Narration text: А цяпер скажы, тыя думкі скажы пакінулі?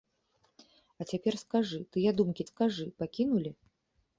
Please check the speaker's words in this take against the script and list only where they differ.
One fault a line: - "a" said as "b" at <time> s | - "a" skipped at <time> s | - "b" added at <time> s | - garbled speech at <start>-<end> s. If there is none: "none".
none